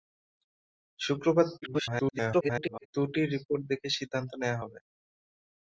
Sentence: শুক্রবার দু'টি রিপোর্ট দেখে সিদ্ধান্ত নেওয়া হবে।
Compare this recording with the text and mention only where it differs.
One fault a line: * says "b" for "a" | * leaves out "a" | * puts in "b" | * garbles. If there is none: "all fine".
* garbles